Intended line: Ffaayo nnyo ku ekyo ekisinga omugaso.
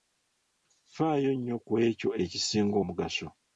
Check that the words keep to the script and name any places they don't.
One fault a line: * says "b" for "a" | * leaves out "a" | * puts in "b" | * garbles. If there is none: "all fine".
all fine